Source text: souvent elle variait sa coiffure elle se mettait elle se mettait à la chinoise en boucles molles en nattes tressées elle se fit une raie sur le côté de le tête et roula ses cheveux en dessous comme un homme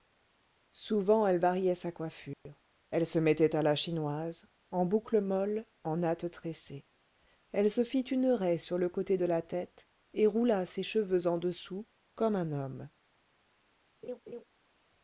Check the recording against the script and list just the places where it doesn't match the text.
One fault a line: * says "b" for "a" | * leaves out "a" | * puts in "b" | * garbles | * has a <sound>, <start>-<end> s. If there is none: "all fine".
* has a dropout, 2.3-2.5 s
* leaves out "elle se mettait"
* says "la" for "le"
* has a laugh, 14.0-14.4 s